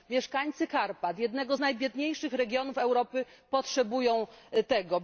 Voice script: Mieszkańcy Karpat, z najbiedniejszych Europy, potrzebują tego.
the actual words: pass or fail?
fail